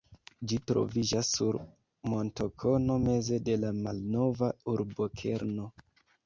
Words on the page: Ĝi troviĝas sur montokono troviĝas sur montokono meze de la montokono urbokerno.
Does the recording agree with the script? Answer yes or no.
no